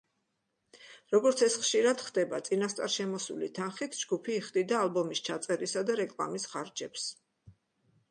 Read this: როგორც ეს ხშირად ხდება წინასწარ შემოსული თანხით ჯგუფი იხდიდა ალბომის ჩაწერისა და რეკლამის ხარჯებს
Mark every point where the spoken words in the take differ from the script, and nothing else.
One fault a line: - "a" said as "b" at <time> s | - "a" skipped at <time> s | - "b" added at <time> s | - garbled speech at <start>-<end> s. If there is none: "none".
none